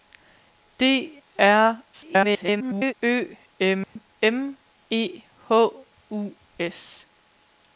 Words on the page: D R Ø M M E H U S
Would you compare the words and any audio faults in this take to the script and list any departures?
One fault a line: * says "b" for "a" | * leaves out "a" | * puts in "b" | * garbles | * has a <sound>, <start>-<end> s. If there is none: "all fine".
* garbles
* has a dropout, 3.8-4.0 s